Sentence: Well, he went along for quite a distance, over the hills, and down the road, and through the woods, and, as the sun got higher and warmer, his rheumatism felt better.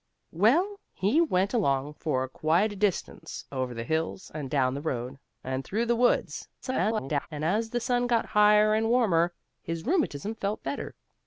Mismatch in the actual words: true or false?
true